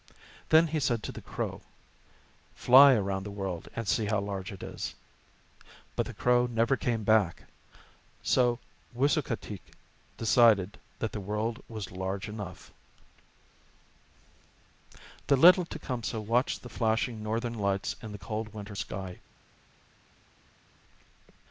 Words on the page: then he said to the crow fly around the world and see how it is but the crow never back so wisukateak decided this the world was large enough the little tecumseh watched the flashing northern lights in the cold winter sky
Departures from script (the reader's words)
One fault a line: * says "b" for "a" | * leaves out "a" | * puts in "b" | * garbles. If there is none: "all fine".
* puts in "large"
* puts in "came"
* says "that" for "this"